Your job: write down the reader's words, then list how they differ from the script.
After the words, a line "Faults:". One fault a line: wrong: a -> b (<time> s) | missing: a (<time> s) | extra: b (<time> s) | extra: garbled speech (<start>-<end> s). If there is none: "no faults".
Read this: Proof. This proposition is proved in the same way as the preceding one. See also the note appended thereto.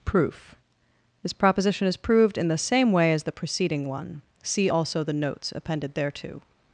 Proof. This proposition is proved in the same way as the preceding one. See also the notes appended thereto.
Faults:
wrong: note -> notes (5.1 s)